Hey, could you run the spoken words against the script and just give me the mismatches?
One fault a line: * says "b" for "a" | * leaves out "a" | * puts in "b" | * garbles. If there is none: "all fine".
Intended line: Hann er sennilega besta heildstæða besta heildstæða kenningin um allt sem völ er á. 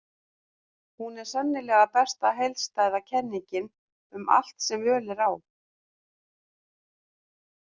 * says "Hún" for "Hann"
* leaves out "besta heildstæða"